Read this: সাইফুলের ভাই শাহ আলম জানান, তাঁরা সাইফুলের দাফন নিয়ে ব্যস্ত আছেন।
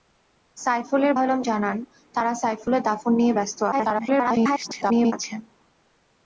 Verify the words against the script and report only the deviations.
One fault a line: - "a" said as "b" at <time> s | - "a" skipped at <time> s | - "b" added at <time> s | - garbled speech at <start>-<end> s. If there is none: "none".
- "ভাই শাহ" skipped at 1.1 s
- garbled speech at 3.7-5.1 s